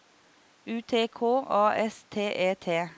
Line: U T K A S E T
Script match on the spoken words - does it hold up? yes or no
no